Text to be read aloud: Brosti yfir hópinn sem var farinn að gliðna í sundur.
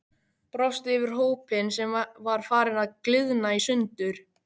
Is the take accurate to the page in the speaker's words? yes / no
yes